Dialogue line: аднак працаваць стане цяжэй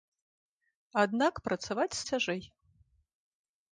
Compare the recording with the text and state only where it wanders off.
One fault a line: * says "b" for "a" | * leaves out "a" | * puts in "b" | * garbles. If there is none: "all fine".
* leaves out "стане"